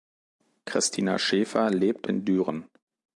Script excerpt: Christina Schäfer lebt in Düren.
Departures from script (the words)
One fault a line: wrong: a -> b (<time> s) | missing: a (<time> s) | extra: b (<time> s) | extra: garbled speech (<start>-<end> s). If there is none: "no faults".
no faults